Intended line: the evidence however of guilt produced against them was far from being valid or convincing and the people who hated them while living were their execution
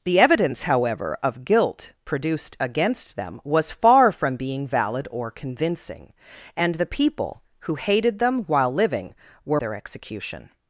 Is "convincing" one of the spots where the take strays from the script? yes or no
no